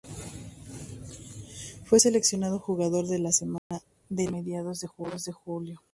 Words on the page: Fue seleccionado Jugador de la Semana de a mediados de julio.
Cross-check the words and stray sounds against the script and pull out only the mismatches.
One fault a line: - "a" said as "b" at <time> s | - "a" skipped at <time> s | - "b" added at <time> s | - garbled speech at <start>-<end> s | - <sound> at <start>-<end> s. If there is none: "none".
- dropout at 3.6-3.7 s